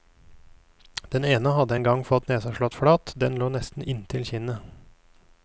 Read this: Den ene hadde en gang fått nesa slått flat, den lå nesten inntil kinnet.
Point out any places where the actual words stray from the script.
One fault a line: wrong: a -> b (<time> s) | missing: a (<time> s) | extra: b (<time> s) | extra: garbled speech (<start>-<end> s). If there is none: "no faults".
no faults